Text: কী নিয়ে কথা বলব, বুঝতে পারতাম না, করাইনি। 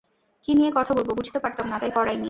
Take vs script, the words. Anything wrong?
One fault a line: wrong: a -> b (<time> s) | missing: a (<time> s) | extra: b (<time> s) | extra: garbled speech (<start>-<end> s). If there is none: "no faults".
extra: তাই (1.8 s)